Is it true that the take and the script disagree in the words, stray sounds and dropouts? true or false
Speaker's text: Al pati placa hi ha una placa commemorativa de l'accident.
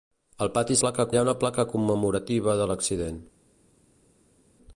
false